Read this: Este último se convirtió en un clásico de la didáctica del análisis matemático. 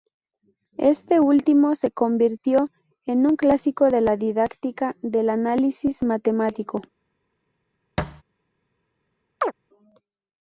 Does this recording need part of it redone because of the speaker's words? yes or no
no